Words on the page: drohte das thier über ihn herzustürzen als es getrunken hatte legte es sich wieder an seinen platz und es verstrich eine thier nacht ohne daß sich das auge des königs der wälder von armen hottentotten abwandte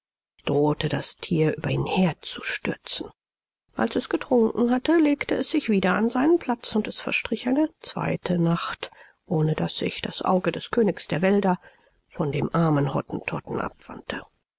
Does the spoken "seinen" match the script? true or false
true